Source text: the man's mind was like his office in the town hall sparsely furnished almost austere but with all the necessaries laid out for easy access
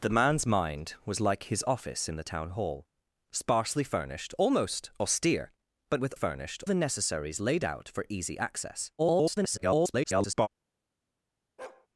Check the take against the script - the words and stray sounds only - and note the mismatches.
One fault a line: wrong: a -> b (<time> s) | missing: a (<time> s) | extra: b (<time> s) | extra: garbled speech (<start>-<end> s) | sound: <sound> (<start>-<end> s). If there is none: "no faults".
wrong: all -> furnished (6.1 s)
extra: garbled speech (9.0-10.5 s)
sound: bark (11.6-11.9 s)